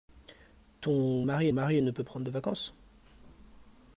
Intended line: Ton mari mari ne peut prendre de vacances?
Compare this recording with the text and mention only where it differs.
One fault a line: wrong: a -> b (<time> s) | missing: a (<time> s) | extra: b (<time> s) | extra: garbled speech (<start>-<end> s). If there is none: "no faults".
no faults